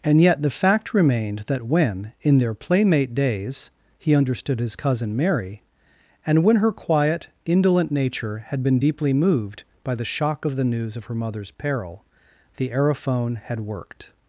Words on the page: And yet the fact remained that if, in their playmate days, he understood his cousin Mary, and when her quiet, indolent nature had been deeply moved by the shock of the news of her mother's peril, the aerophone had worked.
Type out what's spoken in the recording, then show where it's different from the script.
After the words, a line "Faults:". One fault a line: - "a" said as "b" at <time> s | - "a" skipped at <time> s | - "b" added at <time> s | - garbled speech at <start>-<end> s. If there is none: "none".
And yet the fact remained that when, in their playmate days, he understood his cousin Mary, and when her quiet, indolent nature had been deeply moved by the shock of the news of her mother's peril, the aerophone had worked.
Faults:
- "if" said as "when" at 1.7 s